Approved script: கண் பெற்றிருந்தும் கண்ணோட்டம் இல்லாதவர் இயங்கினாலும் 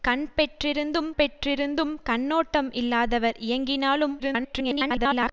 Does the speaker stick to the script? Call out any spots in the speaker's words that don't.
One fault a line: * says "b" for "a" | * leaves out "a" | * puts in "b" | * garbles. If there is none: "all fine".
* puts in "பெற்றிருந்தும்"
* garbles